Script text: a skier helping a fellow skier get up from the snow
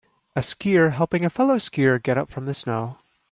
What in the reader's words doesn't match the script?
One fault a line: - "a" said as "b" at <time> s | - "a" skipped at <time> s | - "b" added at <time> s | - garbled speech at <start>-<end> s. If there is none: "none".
none